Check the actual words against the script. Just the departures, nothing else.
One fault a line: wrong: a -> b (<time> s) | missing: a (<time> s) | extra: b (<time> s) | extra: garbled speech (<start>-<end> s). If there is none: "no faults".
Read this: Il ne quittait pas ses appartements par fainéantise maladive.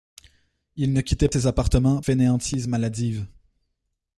missing: pas (1.3 s)
missing: par (2.0 s)